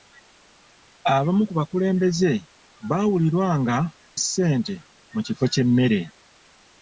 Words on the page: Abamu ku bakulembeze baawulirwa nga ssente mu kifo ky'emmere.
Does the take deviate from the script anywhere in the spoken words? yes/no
no